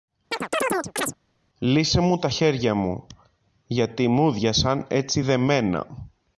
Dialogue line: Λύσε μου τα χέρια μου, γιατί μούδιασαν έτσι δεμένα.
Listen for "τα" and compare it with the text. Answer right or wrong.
right